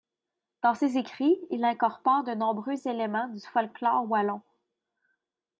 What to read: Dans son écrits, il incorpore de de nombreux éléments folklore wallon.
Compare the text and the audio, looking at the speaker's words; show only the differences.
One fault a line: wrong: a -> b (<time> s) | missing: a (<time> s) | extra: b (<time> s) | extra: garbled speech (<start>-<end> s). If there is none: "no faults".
wrong: son -> ses (0.7 s)
missing: de (2.3 s)
extra: du (3.3 s)